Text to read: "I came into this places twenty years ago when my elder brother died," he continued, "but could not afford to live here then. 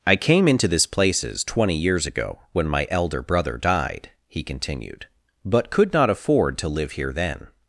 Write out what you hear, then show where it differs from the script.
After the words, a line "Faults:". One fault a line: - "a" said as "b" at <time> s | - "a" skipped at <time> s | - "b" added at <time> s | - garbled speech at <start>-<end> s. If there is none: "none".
"I came into this places twenty years ago when my elder brother died," he continued, "but could not afford to live here then.
Faults:
none